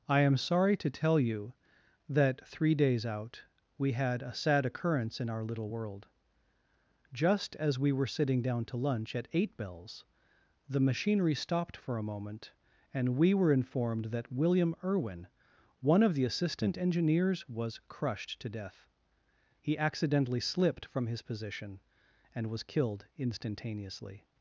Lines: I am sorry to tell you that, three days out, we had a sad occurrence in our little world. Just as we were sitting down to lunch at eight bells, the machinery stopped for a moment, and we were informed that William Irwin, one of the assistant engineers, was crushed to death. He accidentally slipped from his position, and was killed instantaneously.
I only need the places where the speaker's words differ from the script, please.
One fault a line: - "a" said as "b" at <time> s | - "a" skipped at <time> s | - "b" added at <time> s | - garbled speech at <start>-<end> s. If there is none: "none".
none